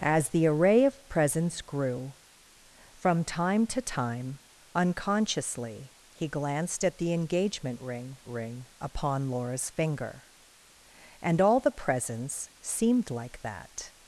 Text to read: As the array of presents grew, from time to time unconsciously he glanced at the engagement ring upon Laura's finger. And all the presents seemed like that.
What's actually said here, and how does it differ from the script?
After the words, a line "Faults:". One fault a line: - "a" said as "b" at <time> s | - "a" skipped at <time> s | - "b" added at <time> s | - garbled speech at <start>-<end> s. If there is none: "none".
As the array of presents grew, from time to time unconsciously he glanced at the engagement ring ring upon Laura's finger. And all the presents seemed like that.
Faults:
- "ring" added at 8.3 s